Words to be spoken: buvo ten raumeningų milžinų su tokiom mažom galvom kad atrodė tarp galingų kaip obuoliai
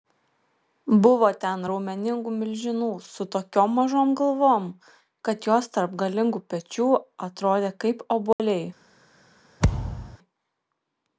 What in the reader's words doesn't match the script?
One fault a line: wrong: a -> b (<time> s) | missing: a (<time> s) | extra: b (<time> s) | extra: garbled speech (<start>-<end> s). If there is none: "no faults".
wrong: atrodė -> jos (5.5 s)
extra: pečių atrodė (6.6 s)